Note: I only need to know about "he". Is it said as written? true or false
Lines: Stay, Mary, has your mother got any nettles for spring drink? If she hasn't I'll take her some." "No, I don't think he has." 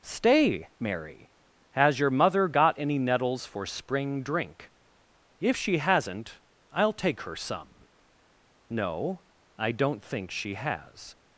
false